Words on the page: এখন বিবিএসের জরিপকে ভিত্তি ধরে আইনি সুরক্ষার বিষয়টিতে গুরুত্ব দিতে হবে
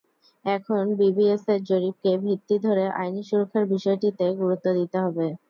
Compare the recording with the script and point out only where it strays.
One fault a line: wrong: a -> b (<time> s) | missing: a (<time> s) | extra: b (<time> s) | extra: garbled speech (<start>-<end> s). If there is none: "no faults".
no faults